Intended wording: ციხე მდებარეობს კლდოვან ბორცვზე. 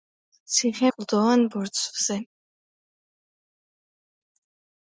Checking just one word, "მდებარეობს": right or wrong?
wrong